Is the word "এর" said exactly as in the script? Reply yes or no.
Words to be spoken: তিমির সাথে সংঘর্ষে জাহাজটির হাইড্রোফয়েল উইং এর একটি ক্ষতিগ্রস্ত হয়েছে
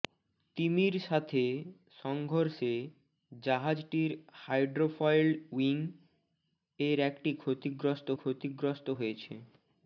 yes